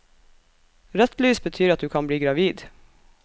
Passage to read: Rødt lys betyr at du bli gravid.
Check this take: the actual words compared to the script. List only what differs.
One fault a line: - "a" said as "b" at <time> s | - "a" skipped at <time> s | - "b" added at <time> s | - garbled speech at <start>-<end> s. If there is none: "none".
- "kan" added at 1.9 s